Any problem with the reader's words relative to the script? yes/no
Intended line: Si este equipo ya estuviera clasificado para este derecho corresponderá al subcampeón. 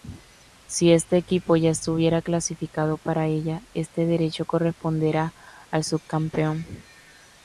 yes